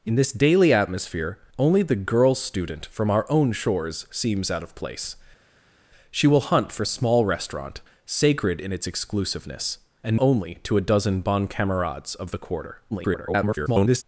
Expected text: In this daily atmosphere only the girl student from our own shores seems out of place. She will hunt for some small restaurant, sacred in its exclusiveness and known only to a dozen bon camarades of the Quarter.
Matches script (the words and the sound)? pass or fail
fail